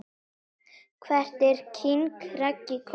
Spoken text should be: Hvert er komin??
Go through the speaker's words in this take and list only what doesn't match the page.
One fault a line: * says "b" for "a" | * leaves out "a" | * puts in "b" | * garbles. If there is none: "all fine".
* puts in "king Raggi"